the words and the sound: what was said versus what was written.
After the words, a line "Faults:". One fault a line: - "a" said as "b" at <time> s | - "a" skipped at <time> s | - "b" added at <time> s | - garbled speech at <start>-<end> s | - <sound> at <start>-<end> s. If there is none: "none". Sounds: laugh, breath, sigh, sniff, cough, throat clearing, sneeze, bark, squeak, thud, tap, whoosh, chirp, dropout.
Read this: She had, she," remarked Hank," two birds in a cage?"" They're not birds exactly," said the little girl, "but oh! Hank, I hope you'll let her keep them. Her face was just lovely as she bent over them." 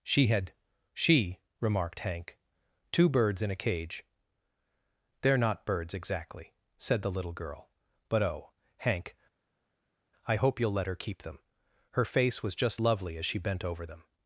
She had, she," remarked Hank," two birds in a cage?"" They're not birds exactly," said the little girl, "but oh! Hank, I hope you'll let her keep them. Her face was just lovely as she bent over them."
Faults:
none